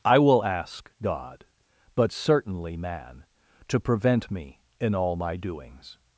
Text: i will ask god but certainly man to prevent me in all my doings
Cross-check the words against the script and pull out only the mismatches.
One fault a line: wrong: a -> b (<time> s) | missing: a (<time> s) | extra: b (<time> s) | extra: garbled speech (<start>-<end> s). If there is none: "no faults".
no faults